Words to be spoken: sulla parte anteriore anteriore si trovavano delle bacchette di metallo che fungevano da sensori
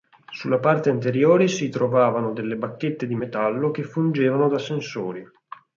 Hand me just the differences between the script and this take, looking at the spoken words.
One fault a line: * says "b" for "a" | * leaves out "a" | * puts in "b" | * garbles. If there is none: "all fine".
* leaves out "anteriore"